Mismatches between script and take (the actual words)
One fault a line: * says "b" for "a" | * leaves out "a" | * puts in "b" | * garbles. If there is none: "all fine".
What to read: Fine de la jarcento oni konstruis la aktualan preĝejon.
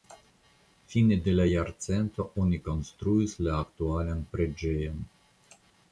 all fine